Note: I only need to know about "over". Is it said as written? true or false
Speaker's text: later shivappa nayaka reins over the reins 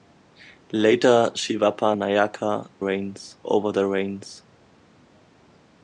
true